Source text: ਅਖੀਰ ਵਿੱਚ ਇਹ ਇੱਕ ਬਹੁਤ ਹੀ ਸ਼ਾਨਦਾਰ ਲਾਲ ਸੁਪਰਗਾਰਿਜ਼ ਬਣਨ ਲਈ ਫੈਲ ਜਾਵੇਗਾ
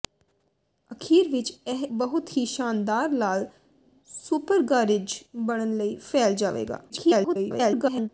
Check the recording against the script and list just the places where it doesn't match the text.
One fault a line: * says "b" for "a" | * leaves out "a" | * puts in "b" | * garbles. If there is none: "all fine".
* leaves out "ਇੱਕ"
* garbles